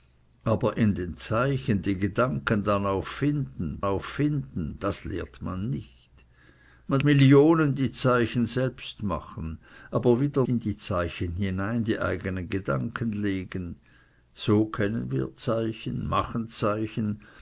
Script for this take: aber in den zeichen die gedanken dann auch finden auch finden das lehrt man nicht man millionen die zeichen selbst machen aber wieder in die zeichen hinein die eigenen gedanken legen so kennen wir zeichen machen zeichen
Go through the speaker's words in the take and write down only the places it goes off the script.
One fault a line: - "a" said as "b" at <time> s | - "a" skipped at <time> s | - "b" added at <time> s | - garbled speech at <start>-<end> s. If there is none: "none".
none